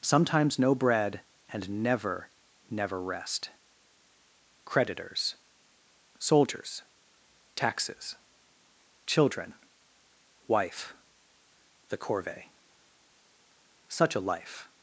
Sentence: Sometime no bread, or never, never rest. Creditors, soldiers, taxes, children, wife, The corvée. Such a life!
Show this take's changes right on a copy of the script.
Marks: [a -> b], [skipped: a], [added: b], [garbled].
[Sometime -> Sometimes] no bread, [or -> and] never, never rest. Creditors, soldiers, taxes, children, wife, The corvée. Such a life!